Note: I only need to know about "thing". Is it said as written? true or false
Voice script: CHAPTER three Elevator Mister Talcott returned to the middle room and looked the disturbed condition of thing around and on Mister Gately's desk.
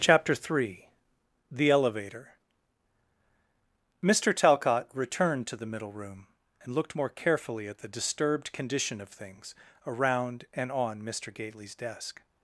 false